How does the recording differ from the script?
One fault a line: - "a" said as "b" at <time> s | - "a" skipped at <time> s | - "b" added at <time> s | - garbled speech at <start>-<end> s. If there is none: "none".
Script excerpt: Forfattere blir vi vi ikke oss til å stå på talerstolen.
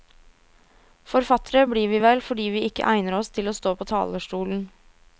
- "vel fordi" added at 2.0 s
- "egner" added at 2.9 s